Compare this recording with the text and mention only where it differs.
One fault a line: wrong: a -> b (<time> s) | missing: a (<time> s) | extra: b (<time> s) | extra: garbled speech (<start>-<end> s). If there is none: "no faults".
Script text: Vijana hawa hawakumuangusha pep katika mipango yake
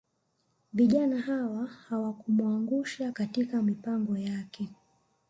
missing: pep (3.1 s)